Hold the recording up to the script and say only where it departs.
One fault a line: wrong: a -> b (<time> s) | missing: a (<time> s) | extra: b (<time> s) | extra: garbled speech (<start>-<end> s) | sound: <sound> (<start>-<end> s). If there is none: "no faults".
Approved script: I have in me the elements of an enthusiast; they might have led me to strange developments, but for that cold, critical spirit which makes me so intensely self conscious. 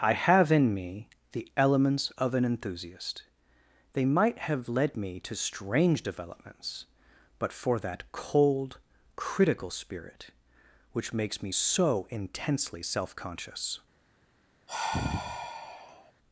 sound: sigh (14.7-16.1 s)